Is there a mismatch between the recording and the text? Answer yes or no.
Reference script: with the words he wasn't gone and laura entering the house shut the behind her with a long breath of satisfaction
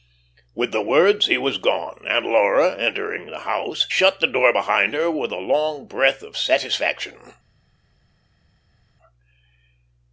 yes